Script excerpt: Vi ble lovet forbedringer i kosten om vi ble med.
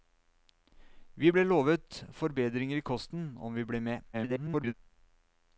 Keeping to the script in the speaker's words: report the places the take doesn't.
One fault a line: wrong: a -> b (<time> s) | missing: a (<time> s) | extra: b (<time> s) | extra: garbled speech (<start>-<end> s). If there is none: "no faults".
extra: garbled speech (4.1-4.7 s)